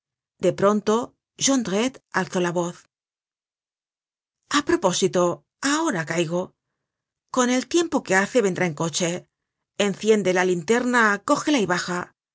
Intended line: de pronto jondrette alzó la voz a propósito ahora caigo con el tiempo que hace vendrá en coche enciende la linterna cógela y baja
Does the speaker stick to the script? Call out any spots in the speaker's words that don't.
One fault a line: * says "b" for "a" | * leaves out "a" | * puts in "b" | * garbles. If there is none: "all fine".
all fine